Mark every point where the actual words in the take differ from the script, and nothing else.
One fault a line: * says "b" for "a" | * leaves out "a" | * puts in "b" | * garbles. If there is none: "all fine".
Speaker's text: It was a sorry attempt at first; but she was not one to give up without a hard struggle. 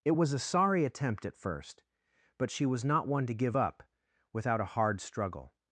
all fine